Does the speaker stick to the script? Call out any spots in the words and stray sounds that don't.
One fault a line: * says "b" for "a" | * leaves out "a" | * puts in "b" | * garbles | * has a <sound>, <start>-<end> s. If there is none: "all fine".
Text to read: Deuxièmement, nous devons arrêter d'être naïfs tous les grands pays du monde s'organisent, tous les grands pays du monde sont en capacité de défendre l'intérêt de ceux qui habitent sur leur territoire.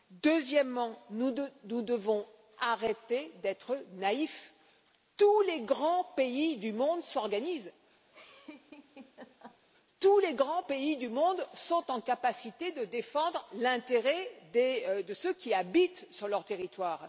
* has a laugh, 8.1-9.6 s